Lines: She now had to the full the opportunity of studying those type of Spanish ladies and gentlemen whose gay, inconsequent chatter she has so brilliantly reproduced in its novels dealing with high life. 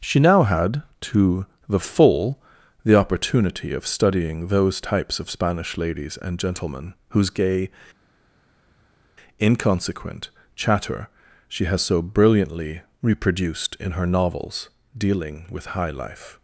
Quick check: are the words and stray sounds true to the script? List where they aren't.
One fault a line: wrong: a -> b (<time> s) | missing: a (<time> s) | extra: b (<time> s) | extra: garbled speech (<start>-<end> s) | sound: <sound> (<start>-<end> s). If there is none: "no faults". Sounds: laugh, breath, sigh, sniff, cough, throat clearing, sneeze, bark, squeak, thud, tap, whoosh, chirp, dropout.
wrong: type -> types (4.8 s)
wrong: its -> her (13.9 s)